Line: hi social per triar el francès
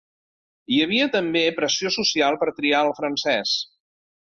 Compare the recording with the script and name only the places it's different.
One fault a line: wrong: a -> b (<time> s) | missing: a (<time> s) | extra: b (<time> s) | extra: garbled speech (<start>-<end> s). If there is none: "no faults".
extra: havia també pressió (0.8 s)